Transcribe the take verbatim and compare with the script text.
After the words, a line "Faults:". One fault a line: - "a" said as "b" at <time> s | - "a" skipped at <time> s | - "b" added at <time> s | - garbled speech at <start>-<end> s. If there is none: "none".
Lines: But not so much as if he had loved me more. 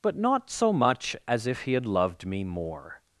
But not so much as if he had loved me more.
Faults:
none